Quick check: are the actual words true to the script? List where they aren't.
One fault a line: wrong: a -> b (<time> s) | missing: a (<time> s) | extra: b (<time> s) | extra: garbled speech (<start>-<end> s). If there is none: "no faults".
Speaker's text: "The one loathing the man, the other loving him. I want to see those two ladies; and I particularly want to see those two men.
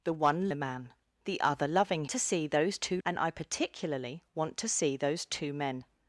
missing: loathing (0.5 s)
missing: him I want (2.0 s)
missing: ladies (3.0 s)